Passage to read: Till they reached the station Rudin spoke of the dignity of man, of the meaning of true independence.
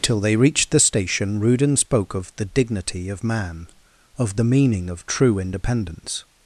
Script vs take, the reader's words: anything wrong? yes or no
no